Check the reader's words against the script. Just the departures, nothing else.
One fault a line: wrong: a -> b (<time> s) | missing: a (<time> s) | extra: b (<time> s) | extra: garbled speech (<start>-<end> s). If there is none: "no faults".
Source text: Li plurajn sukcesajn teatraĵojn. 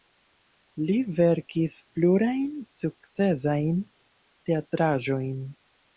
extra: verkis (1.2 s)